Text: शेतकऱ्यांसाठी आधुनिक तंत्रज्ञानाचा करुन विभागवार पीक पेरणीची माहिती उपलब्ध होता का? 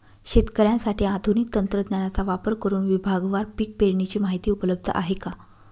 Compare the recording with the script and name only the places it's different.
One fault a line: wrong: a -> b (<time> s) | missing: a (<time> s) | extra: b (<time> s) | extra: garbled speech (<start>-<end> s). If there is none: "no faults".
extra: वापर (2.2 s)
wrong: होता -> आहे (4.9 s)